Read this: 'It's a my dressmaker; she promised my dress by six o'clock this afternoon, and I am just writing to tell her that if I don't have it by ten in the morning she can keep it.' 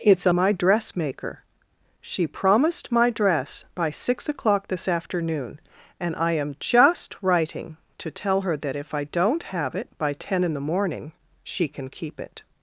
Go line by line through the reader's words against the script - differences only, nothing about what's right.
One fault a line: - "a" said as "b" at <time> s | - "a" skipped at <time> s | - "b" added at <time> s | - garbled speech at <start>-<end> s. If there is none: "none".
none